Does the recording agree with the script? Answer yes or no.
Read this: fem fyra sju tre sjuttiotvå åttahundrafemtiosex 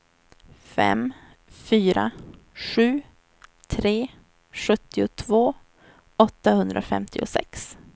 yes